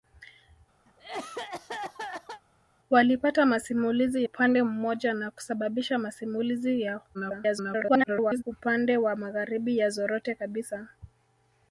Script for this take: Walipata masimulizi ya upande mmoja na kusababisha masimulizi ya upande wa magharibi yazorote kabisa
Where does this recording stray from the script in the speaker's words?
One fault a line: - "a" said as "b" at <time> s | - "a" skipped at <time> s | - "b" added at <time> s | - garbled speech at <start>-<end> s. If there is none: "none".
- "ya" skipped at 4.2 s
- garbled speech at 7.1-8.4 s